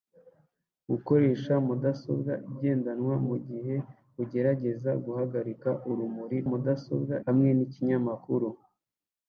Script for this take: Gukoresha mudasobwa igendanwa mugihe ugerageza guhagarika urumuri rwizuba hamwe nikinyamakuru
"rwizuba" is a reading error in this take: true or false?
true